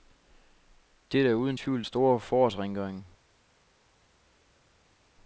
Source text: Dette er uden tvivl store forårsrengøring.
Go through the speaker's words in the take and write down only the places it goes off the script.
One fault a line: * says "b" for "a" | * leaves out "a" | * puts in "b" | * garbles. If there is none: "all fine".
all fine